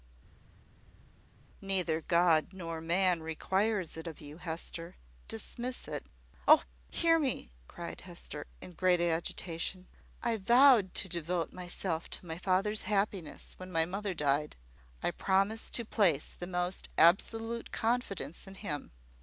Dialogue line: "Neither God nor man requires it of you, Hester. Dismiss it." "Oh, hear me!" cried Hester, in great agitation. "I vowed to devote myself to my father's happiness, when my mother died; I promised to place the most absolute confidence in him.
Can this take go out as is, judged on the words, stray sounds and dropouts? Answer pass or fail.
pass